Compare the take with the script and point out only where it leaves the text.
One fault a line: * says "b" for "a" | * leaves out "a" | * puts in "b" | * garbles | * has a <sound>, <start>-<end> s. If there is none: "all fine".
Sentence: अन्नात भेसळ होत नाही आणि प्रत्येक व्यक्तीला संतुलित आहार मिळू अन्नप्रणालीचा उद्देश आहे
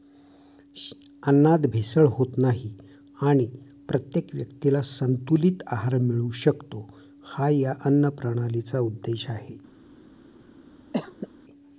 * puts in "शकतो हा या"
* has a cough, 10.9-11.3 s